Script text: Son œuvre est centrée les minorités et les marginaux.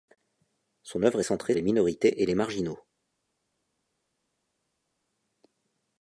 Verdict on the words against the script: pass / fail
pass